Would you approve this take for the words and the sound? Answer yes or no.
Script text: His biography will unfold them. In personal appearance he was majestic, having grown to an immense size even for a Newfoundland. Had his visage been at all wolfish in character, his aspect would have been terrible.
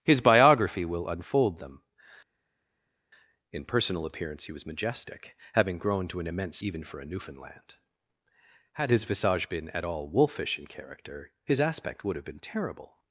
no